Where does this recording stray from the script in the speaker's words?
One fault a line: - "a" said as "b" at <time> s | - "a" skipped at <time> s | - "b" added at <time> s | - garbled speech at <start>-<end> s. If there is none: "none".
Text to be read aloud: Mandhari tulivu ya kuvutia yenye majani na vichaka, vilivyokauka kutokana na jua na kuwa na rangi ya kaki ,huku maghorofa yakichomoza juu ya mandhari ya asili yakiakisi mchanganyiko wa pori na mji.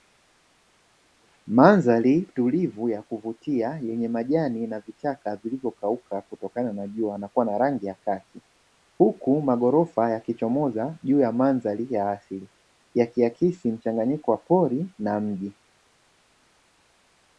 none